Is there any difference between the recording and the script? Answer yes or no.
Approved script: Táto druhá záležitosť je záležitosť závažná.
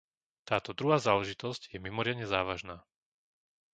yes